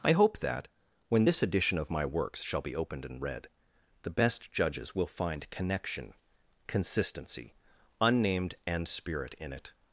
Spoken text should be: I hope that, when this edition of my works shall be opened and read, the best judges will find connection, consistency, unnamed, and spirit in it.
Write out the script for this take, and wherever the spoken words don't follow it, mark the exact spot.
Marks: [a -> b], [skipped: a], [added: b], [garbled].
I hope that, when this edition of my works shall be opened and read, the best judges will find connection, consistency, unnamed, and spirit in it.